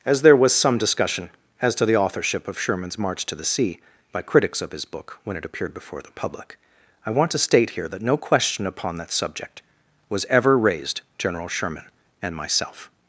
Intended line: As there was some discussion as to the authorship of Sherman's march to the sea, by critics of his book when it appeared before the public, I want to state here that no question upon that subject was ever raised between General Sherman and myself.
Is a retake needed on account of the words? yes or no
yes